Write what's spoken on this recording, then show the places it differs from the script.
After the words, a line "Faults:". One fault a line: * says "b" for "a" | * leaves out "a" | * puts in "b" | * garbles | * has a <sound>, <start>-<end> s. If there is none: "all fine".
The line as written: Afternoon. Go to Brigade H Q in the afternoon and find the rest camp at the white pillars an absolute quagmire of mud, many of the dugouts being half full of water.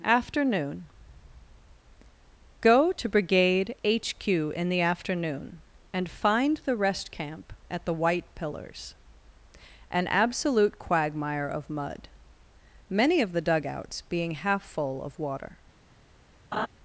Afternoon. Go to Brigade H Q in the afternoon and find the rest camp at the white pillars an absolute quagmire of mud, many of the dugouts being half full of water.
Faults:
* has a laugh, 16.5-16.7 s